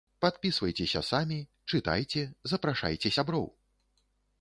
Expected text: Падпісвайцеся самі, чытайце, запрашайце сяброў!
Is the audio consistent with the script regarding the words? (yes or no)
yes